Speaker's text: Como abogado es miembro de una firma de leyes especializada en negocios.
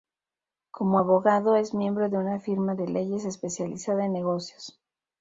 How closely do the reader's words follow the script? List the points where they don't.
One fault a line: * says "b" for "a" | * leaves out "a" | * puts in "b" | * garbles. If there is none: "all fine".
all fine